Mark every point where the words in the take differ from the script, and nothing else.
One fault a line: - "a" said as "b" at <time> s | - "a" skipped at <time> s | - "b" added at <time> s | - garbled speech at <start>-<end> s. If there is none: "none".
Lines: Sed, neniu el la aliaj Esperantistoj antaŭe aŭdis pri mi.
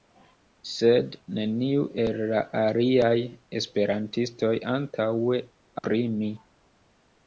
- "aŭdis" skipped at 5.4 s